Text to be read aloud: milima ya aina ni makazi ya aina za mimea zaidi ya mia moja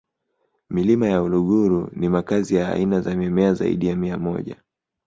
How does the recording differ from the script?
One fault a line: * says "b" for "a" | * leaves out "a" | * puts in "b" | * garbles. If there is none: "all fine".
* says "uluguru" for "aina"